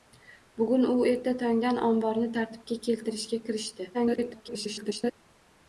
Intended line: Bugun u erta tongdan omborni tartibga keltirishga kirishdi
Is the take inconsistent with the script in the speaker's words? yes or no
yes